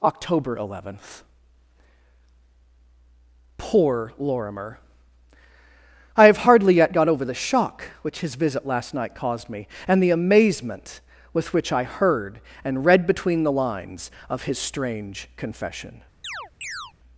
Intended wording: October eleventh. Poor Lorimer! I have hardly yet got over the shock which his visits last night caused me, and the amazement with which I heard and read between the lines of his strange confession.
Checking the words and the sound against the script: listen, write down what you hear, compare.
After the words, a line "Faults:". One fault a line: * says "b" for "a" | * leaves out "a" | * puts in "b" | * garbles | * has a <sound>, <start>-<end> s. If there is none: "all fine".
October eleventh. Poor Lorimer! I have hardly yet got over the shock which his visit last night caused me, and the amazement with which I heard and read between the lines of his strange confession.
Faults:
* says "visit" for "visits"
* has a chirp, 16.2-16.9 s